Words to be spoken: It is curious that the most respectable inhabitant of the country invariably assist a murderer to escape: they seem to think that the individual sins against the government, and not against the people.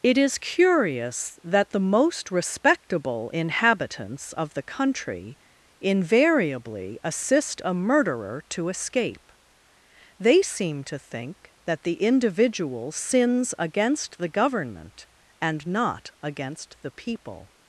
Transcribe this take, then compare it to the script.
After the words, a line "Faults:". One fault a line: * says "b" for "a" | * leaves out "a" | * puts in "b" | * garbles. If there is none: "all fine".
It is curious that the most respectable inhabitants of the country invariably assist a murderer to escape: they seem to think that the individual sins against the government, and not against the people.
Faults:
* says "inhabitants" for "inhabitant"